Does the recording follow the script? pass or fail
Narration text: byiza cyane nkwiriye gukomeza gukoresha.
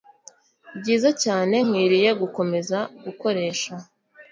pass